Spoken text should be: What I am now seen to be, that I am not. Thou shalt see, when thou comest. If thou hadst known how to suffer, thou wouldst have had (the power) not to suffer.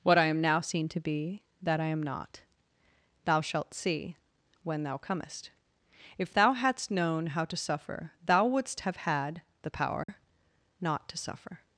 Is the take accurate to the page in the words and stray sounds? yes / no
no